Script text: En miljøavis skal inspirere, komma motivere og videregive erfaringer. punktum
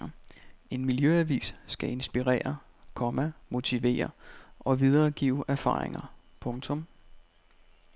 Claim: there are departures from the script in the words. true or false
false